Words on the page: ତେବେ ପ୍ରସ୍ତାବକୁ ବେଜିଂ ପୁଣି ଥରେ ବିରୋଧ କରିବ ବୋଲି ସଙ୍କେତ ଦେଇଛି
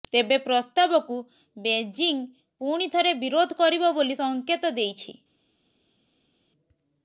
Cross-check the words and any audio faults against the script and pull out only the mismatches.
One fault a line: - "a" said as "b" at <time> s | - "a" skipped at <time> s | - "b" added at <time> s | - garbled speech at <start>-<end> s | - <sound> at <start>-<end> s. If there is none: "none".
none